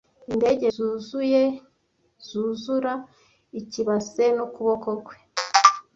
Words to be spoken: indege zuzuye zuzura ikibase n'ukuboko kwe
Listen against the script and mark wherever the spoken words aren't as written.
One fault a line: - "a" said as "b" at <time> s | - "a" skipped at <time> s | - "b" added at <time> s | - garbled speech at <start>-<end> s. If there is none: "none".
none